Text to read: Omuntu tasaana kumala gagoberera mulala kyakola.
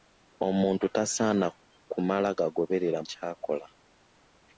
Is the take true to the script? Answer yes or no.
no